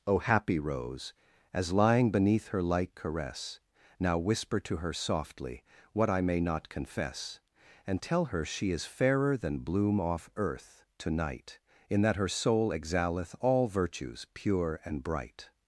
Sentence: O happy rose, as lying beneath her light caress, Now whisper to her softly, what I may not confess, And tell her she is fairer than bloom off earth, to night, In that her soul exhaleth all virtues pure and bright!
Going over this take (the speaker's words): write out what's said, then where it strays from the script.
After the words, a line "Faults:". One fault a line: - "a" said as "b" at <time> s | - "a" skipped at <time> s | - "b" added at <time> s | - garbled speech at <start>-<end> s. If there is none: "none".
O happy rose, as lying beneath her light caress, Now whisper to her softly, what I may not confess, And tell her she is fairer than bloom off earth, to night, In that her soul exhaleth all virtues pure and bright!
Faults:
none